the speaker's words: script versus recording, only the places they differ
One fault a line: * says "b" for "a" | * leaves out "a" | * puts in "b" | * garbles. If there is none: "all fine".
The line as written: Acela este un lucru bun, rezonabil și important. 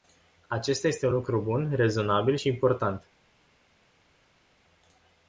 * says "Acesta" for "Acela"